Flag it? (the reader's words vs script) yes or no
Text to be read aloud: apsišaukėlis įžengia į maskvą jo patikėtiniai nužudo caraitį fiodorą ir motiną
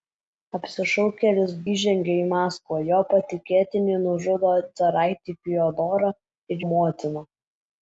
no